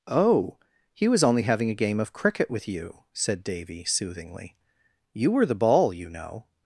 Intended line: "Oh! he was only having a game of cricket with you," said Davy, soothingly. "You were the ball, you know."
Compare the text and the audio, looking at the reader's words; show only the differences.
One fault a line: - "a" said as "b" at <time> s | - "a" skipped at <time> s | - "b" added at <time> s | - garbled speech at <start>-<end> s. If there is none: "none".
none